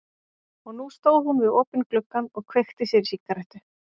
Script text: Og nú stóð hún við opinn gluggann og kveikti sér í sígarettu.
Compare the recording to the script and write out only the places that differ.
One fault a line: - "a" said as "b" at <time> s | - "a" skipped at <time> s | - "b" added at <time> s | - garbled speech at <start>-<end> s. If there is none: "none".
none